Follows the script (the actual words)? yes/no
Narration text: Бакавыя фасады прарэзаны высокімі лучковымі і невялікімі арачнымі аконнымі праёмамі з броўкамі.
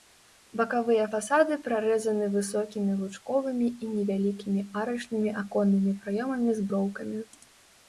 yes